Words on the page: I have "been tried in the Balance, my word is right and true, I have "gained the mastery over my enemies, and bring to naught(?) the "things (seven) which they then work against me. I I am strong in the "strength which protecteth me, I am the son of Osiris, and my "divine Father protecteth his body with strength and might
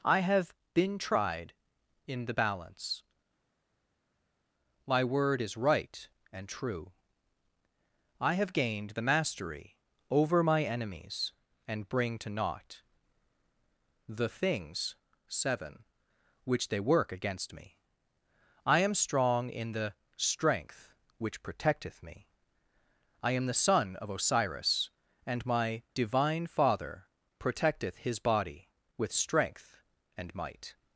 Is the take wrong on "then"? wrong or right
wrong